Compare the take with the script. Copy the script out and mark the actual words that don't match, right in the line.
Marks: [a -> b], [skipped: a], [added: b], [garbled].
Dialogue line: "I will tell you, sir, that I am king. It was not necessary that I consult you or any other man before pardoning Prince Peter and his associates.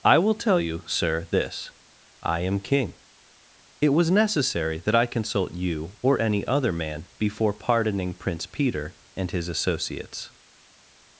"I will tell you, sir, [that -> this] I am king. It was [skipped: not] necessary that I consult you or any other man before pardoning Prince Peter and his associates.